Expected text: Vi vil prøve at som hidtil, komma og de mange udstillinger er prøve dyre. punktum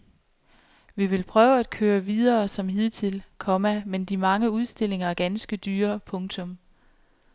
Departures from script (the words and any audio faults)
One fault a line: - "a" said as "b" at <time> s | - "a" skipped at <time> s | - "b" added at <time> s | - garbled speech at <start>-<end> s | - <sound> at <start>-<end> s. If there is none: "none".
- "køre videre" added at 1.7 s
- "og" said as "men" at 3.8 s
- "prøve" said as "ganske" at 5.1 s